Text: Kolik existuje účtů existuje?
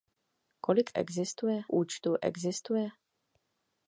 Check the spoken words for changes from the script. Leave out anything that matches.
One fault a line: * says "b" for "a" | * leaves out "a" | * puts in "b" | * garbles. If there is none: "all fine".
all fine